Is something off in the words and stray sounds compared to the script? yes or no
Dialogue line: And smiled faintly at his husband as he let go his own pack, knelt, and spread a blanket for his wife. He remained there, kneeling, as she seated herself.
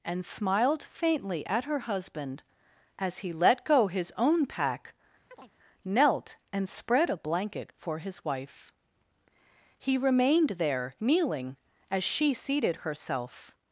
yes